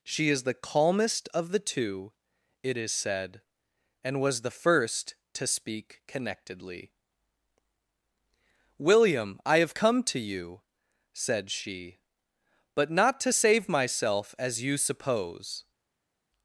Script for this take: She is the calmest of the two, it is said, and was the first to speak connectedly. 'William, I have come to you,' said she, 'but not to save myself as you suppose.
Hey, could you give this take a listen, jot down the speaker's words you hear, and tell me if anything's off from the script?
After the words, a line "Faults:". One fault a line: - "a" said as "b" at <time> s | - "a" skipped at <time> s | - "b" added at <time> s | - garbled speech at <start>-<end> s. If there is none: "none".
She is the calmest of the two, it is said, and was the first to speak connectedly. 'William, I have come to you,' said she, 'but not to save myself as you suppose.
Faults:
none